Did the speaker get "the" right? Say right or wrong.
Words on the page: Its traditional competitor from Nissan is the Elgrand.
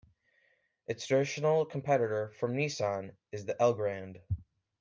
right